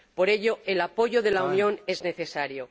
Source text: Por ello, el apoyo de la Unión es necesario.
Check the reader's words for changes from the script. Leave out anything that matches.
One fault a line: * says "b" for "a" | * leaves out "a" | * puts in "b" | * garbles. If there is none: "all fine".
all fine